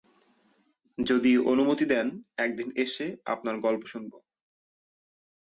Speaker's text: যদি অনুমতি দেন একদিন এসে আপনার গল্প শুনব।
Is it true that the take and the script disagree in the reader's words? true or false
false